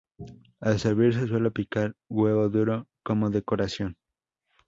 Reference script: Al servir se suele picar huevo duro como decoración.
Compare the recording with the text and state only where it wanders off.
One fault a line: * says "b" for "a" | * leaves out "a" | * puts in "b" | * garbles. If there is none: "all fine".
all fine